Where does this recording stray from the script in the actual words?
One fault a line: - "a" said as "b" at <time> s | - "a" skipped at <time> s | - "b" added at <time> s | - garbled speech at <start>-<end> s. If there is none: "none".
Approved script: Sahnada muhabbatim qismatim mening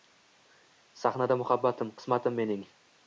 none